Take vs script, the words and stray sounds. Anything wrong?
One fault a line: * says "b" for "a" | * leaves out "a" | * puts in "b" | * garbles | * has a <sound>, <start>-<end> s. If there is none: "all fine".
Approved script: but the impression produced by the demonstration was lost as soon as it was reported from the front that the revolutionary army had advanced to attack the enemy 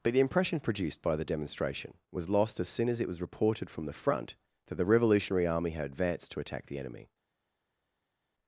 all fine